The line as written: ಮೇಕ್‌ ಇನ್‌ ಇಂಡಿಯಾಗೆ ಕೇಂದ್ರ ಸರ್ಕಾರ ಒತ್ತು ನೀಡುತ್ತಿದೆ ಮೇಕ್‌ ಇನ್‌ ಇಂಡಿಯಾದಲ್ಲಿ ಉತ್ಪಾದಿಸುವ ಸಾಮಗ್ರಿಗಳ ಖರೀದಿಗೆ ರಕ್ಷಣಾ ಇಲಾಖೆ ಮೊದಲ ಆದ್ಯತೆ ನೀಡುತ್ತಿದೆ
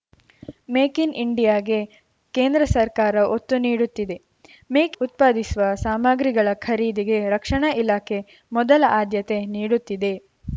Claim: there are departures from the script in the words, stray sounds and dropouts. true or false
true